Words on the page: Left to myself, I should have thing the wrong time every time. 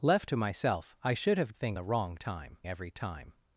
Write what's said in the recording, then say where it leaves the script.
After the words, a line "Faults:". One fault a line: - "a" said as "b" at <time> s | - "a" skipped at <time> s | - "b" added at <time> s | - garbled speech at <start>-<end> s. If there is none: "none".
Left to myself, I should have thing the wrong time every time.
Faults:
none